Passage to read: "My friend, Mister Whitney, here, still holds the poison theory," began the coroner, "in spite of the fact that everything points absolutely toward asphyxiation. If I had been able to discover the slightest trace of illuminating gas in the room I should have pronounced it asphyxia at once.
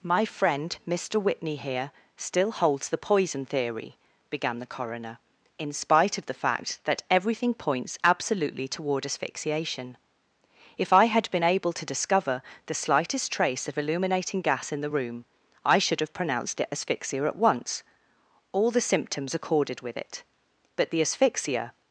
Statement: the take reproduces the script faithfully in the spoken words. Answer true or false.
false